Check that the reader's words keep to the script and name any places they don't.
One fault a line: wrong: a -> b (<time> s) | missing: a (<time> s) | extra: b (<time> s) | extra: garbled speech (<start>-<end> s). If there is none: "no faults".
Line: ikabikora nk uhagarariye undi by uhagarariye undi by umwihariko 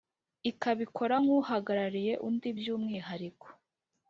missing: uhagarariye undi by (2.7 s)